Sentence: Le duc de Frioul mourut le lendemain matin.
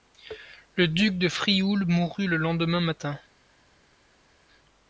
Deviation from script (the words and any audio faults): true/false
false